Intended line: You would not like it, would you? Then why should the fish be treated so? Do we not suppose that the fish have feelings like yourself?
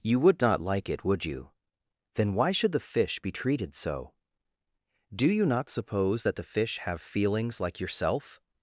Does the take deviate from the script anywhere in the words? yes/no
yes